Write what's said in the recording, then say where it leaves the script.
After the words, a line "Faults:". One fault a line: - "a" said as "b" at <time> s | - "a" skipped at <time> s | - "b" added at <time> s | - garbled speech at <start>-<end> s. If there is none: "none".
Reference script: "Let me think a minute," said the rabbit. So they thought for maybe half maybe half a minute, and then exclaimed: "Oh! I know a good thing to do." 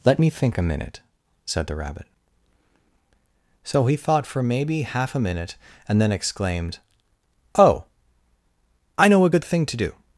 "Let me think a minute," said the rabbit. So he thought for maybe half a minute, and then exclaimed: "Oh! I know a good thing to do."
Faults:
- "they" said as "he" at 3.9 s
- "maybe half" skipped at 5.1 s